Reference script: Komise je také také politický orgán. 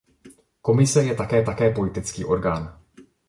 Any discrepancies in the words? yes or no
no